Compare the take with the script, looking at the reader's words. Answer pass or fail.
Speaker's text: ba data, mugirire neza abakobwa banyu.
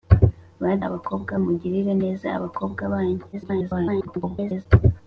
fail